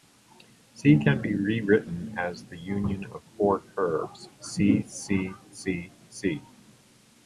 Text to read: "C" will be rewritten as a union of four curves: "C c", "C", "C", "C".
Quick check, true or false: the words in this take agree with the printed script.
false